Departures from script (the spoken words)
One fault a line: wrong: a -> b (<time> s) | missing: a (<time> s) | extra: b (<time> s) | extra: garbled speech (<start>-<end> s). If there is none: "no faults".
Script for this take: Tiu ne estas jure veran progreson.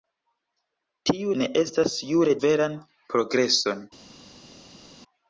no faults